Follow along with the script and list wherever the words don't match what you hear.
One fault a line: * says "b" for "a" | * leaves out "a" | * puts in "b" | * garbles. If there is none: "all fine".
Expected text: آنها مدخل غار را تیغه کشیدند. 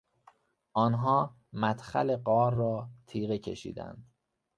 all fine